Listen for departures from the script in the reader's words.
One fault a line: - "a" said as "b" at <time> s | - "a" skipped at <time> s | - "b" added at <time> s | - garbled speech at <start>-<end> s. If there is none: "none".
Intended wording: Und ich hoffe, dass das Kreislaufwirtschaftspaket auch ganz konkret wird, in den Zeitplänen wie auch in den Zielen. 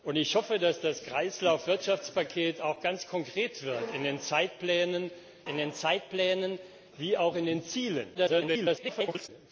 - "in den Zeitplänen" added at 5.5 s
- garbled speech at 8.1-9.3 s